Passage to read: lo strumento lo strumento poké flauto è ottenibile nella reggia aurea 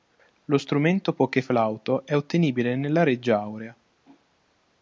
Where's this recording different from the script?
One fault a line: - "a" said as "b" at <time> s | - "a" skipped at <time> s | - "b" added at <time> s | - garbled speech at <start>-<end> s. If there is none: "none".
- "lo strumento" skipped at 1.1 s